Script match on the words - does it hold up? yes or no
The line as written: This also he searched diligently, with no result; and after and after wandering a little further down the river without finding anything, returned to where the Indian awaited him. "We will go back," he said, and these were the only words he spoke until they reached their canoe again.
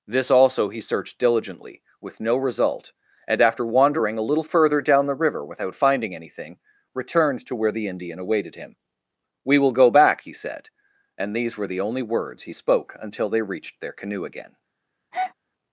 no